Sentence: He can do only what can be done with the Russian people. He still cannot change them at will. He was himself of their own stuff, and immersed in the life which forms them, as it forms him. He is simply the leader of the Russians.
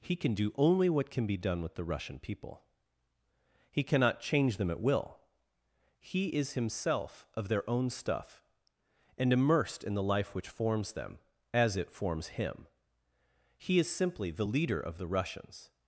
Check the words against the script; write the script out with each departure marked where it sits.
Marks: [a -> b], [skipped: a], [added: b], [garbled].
He can do only what can be done with the Russian people. He [skipped: still] cannot change them at will. He [was -> is] himself of their own stuff, and immersed in the life which forms them, as it forms him. He is simply the leader of the Russians.